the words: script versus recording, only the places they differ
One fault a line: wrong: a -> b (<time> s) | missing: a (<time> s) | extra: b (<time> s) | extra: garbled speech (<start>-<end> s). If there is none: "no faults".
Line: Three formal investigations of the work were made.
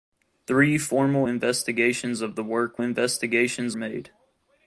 wrong: were -> investigations (2.8 s)